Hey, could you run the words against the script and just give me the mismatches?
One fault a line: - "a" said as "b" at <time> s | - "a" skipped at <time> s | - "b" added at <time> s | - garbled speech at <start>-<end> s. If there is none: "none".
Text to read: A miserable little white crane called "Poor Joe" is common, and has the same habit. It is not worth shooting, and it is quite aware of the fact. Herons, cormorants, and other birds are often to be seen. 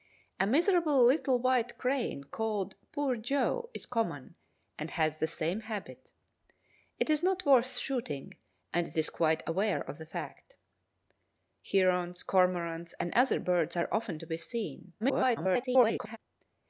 - garbled speech at 15.0-16.2 s